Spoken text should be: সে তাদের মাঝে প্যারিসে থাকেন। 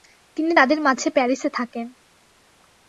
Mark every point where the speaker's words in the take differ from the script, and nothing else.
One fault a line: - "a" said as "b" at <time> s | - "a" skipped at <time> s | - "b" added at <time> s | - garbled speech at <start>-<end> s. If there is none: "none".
- "সে" said as "তিনি" at 0.4 s